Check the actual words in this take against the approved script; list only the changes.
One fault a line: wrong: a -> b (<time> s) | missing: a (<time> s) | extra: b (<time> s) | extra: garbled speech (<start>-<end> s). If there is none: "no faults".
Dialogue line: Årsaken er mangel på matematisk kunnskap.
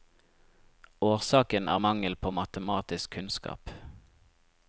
no faults